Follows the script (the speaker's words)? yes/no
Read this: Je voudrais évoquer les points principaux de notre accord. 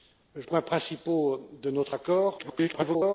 no